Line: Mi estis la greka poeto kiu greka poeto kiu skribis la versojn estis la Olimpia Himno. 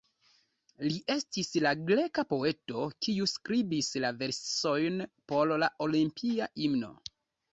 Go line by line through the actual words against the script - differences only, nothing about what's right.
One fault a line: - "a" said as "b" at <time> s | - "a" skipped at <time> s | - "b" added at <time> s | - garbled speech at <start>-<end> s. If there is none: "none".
- "Mi" said as "Li" at 0.8 s
- "greka poeto kiu" skipped at 3.3 s
- "estis" said as "por" at 5.3 s